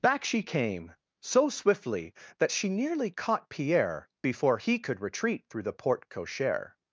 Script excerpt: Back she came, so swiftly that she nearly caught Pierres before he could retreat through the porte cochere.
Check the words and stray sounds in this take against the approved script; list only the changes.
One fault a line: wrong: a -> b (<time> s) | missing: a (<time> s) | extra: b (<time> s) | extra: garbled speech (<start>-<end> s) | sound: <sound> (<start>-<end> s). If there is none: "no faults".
wrong: Pierres -> Pierre (3.5 s)